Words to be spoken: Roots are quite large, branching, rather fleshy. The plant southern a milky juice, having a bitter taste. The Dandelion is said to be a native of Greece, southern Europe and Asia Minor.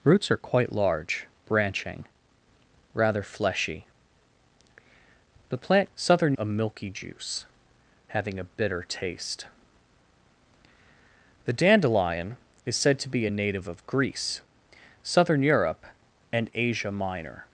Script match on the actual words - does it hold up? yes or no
yes